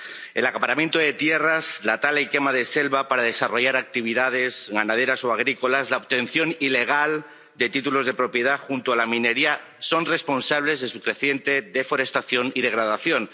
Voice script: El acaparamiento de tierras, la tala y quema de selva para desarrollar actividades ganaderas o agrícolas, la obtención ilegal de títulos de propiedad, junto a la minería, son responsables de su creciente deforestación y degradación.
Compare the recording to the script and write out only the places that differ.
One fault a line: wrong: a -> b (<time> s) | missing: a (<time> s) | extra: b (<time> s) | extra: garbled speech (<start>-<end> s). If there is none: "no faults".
no faults